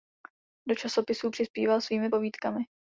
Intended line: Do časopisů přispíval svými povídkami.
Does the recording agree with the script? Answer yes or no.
yes